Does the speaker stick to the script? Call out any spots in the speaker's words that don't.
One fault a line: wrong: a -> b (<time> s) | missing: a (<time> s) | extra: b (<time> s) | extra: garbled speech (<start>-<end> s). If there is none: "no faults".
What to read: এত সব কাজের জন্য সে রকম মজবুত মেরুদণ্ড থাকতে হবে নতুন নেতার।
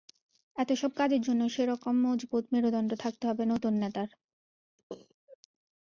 no faults